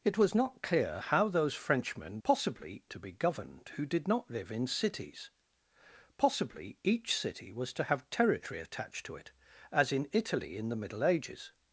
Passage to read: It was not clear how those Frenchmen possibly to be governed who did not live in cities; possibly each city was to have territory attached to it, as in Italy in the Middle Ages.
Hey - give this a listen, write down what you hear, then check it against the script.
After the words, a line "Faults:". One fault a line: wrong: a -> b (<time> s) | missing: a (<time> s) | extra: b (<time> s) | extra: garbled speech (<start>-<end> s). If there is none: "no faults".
It was not clear how those Frenchmen possibly to be governed who did not live in cities; possibly each city was to have territory attached to it, as in Italy in the Middle Ages.
Faults:
no faults